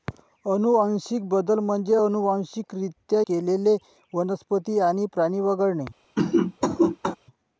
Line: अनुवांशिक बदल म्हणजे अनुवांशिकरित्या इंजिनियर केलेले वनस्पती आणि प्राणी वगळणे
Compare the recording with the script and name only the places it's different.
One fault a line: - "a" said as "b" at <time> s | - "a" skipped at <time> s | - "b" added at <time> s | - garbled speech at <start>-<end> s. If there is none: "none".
- "इंजिनियर" skipped at 3.2 s